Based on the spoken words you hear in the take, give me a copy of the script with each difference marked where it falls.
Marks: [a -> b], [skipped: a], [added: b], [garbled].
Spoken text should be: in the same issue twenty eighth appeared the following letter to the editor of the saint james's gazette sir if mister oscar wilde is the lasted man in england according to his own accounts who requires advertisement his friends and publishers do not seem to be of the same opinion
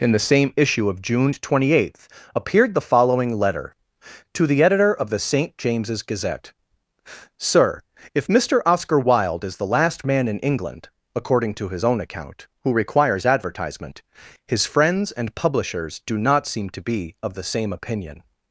in the same issue [added: of june] twenty eighth appeared the following letter to the editor of the saint james's gazette sir if mister oscar wilde is the [lasted -> last] man in england according to his own [accounts -> account] who requires advertisement his friends and publishers do not seem to be of the same opinion